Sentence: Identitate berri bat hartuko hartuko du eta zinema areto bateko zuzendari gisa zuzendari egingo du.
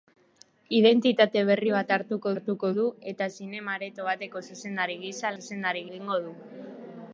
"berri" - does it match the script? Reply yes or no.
yes